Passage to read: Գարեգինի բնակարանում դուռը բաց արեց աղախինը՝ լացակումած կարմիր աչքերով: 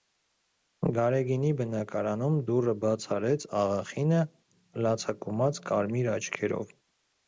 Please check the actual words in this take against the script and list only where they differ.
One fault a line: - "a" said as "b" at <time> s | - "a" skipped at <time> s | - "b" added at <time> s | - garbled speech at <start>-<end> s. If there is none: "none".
none